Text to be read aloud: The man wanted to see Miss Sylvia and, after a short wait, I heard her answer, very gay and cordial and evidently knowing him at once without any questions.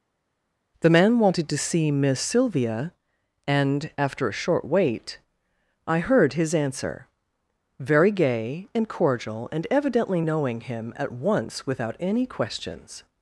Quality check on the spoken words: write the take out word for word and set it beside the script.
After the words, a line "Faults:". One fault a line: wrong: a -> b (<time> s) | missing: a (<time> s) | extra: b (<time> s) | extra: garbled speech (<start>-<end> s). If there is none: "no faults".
The man wanted to see Miss Sylvia and, after a short wait, I heard his answer, very gay and cordial and evidently knowing him at once without any questions.
Faults:
wrong: her -> his (6.3 s)